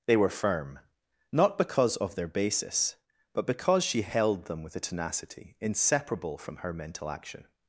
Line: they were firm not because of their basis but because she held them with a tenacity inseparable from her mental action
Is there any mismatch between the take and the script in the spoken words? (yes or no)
no